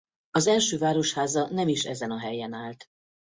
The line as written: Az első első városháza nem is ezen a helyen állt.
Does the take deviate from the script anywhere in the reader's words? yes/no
yes